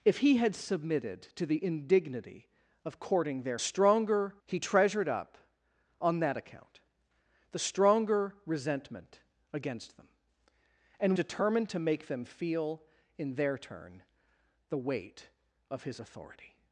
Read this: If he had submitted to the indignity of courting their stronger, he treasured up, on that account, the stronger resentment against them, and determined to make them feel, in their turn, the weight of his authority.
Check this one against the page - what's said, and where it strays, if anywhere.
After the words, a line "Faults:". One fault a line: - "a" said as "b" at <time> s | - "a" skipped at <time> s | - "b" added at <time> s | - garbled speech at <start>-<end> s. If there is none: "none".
If he had submitted to the indignity of courting their stronger, he treasured up, on that account, the stronger resentment against them, and determined to make them feel, in their turn, the weight of his authority.
Faults:
none